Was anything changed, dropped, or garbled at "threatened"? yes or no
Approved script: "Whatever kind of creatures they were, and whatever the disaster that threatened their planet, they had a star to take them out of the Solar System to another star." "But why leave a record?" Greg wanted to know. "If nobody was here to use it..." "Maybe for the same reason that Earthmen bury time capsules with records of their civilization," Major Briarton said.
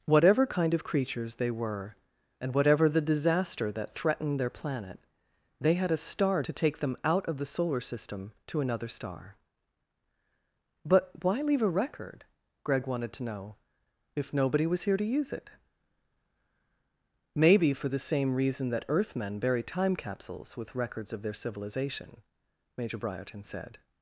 no